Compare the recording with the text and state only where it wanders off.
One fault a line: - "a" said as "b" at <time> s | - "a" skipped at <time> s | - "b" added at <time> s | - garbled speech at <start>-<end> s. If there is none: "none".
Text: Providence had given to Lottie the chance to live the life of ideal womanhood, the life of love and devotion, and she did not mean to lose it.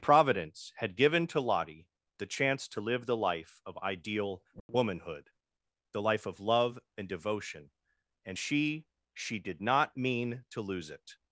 - "she" added at 9.1 s